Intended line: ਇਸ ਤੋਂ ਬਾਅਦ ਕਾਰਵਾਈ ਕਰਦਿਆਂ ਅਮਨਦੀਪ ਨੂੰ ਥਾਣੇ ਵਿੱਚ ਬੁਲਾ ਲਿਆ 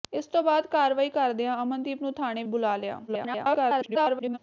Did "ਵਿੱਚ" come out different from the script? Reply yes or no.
yes